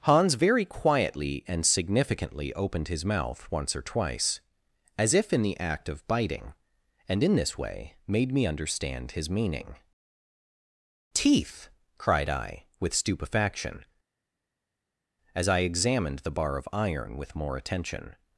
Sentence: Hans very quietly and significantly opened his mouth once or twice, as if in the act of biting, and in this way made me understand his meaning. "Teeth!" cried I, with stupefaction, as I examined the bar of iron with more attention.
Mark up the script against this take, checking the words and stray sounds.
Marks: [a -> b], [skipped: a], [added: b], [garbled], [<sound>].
Hans very quietly and significantly opened his mouth once or twice, as if in the act of biting, and in this way made me understand his meaning. "Teeth!" cried I, with stupefaction, as I examined the bar of iron with more attention.